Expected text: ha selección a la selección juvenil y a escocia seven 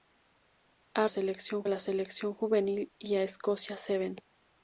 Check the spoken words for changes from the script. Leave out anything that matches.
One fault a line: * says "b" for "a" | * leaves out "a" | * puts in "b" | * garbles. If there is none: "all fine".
all fine